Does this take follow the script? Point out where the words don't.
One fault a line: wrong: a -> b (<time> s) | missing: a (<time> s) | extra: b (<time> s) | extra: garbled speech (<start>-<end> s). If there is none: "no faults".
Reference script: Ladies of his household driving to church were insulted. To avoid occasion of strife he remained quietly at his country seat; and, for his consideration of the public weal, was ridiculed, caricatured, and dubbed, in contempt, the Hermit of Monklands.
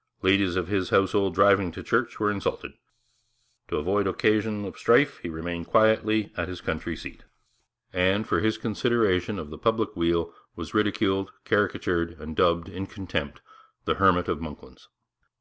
no faults